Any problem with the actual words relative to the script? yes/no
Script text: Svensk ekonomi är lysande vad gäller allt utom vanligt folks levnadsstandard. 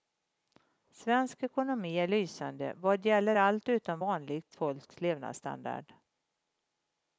no